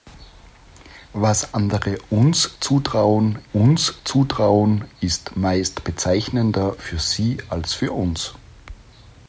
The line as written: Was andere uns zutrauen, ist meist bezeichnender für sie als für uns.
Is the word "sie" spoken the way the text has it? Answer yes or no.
yes